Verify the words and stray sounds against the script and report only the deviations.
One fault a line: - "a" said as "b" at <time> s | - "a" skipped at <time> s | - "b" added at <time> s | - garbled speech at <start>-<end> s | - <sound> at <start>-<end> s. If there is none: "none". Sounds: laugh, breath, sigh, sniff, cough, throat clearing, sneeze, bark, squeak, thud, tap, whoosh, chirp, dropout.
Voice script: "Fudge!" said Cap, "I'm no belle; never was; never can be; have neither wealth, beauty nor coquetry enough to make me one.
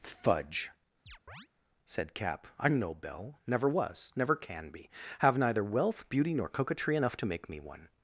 - chirp at 1.1-1.5 s